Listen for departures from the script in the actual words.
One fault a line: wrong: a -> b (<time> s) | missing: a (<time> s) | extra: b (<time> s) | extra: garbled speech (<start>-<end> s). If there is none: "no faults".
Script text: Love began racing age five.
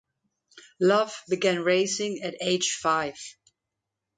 extra: at (2.2 s)